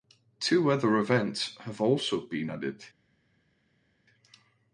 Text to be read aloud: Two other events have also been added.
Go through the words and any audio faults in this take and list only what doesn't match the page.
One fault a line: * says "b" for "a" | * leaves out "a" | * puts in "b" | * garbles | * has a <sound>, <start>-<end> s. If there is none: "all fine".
all fine